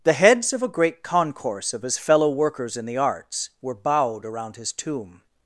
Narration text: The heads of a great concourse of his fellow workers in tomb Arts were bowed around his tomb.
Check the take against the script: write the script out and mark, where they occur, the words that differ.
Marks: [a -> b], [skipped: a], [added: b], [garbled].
The heads of a great concourse of his fellow workers in [tomb -> the] Arts were bowed around his tomb.